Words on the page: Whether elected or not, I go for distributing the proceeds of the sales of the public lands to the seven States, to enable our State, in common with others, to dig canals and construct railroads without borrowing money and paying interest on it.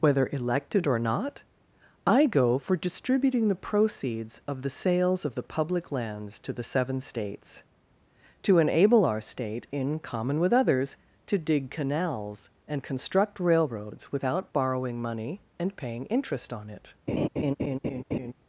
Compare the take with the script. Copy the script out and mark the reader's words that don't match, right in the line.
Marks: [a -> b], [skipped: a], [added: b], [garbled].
Whether elected or not, I go for distributing the proceeds of the sales of the public lands to the seven States, to enable our State, in common with others, to dig canals and construct railroads without borrowing money and paying interest on it.